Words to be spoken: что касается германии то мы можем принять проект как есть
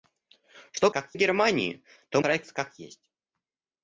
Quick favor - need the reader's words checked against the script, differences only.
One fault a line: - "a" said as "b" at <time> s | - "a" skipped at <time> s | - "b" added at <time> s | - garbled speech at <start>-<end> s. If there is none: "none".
- "касается" said as "как" at 0.9 s
- "мы можем принять" skipped at 2.2 s